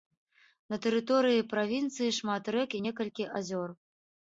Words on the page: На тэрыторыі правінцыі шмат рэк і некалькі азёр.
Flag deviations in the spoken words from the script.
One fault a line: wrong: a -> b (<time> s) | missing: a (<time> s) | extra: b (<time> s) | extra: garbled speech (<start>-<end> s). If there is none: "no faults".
no faults